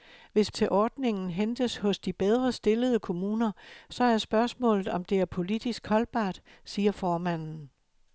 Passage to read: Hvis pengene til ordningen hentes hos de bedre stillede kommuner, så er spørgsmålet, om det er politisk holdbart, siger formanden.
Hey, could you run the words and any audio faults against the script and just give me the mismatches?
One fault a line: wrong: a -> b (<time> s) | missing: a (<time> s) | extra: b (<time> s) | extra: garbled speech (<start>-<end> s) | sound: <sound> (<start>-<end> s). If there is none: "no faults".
missing: pengene (0.5 s)